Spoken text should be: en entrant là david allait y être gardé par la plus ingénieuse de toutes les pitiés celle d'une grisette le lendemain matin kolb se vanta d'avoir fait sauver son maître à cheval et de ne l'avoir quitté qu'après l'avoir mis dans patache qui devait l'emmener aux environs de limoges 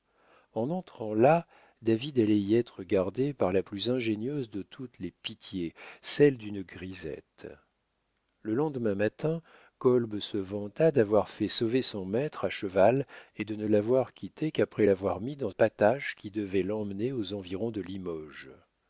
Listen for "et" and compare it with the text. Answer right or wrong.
right